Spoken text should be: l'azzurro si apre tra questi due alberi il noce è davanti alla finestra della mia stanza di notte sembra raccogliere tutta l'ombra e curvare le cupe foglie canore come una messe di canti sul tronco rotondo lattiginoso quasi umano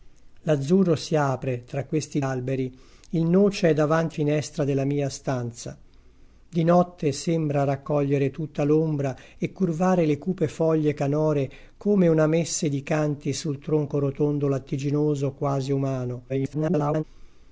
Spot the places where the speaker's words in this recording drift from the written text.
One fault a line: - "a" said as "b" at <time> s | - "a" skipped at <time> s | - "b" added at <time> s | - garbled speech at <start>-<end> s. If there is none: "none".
- "due" skipped at 2.2 s
- "alla" skipped at 4.2 s
- garbled speech at 16.3-17.0 s